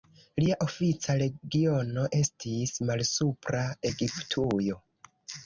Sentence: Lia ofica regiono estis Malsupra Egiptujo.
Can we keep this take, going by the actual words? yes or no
yes